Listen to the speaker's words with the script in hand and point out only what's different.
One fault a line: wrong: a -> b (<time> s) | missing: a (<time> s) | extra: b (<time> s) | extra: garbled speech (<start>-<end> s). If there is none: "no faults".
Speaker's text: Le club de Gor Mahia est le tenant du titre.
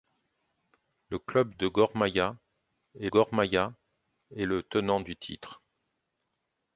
extra: Gor Mahia est (3.1 s)